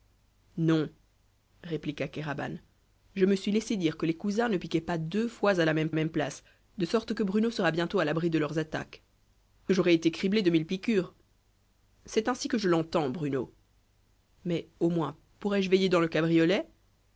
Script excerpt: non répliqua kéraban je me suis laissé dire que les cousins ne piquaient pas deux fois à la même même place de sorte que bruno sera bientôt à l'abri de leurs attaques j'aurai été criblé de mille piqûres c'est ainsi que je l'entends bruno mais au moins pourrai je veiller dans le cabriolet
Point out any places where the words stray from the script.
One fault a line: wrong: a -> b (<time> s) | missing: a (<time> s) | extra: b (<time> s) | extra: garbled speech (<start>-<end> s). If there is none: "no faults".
no faults